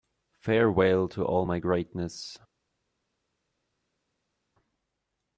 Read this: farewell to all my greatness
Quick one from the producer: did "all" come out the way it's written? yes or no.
yes